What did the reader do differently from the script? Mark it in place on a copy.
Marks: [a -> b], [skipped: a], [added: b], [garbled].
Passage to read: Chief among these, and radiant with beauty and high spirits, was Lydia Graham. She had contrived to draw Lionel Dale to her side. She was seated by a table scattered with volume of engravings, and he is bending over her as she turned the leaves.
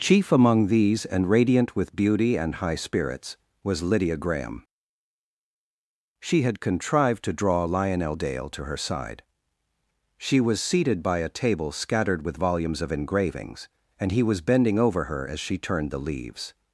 Chief among these, and radiant with beauty and high spirits, was Lydia Graham. She had contrived to draw Lionel Dale to her side. She was seated by a table scattered with [volume -> volumes] of engravings, and he [is -> was] bending over her as she turned the leaves.